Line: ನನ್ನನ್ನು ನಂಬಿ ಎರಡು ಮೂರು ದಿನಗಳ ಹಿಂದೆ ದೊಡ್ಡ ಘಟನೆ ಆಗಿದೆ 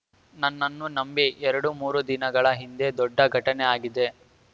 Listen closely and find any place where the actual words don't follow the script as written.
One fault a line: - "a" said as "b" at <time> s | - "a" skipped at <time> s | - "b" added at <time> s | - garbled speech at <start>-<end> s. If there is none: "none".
none